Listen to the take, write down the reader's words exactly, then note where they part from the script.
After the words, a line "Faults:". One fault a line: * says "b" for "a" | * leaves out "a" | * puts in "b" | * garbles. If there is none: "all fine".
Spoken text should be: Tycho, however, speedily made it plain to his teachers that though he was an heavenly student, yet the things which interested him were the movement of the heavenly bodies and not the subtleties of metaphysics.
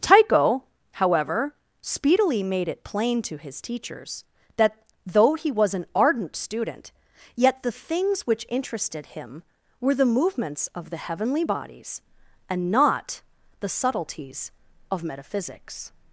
Tycho, however, speedily made it plain to his teachers that though he was an ardent student, yet the things which interested him were the movements of the heavenly bodies and not the subtleties of metaphysics.
Faults:
* says "ardent" for "heavenly"
* says "movements" for "movement"